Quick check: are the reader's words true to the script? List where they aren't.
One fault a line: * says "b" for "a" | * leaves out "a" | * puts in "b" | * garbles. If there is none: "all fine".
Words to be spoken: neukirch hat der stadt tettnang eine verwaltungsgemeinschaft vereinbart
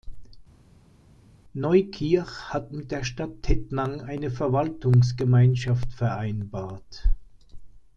* puts in "mit"